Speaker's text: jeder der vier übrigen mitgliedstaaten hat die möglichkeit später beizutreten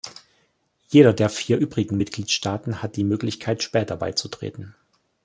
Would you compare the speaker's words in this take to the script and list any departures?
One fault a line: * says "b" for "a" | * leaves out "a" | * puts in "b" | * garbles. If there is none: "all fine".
all fine